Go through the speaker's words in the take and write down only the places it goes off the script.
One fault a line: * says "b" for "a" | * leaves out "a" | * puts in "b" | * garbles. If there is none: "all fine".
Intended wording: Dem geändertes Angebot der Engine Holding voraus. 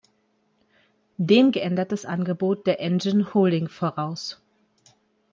all fine